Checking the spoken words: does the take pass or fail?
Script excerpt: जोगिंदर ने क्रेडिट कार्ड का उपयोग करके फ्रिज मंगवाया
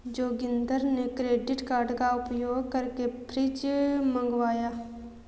pass